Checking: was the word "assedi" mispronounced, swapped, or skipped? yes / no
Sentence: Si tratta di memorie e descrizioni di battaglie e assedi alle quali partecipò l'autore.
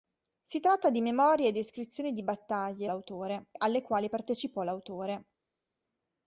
yes